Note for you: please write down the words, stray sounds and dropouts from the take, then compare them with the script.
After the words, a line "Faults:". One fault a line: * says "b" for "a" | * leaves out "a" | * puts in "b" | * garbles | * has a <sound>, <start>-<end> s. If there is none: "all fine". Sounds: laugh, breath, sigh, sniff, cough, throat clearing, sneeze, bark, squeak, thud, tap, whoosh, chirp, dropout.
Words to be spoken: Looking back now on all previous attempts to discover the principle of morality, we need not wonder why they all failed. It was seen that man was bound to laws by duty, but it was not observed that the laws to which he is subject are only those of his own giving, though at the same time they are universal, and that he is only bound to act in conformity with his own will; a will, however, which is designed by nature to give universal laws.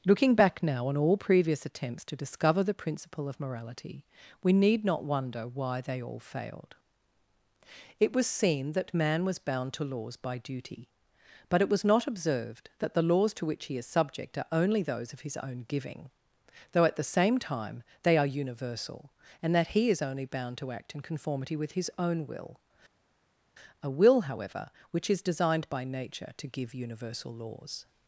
Looking back now on all previous attempts to discover the principle of morality, we need not wonder why they all failed. It was seen that man was bound to laws by duty, but it was not observed that the laws to which he is subject are only those of his own giving, though at the same time they are universal, and that he is only bound to act in conformity with his own will; a will, however, which is designed by nature to give universal laws.
Faults:
all fine